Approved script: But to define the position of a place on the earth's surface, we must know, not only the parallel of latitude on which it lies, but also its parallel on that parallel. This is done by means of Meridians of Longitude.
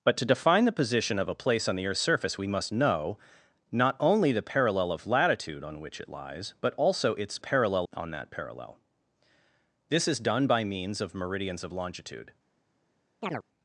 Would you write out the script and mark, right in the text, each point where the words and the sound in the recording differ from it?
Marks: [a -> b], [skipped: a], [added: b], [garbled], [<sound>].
But to define the position of a place on the earth's surface, we must know, not only the parallel of latitude on which it lies, but also its parallel on that parallel. This is done by means of Meridians of Longitude. [chirp]